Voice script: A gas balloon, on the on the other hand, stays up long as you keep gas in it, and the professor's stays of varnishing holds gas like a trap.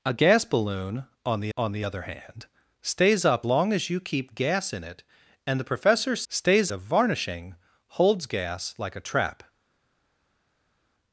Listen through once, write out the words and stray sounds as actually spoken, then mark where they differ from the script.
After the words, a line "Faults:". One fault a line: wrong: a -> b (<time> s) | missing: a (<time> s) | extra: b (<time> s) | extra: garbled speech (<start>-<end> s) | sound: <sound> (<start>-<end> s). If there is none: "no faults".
A gas balloon, on the on the other hand, stays up long as you keep gas in it, and the professor's stays of varnishing holds gas like a trap.
Faults:
no faults